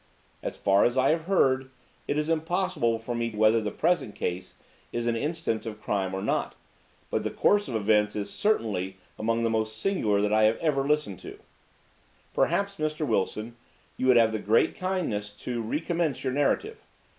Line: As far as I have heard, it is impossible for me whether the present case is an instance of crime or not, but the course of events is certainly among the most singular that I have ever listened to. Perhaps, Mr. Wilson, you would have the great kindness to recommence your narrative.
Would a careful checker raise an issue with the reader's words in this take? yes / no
no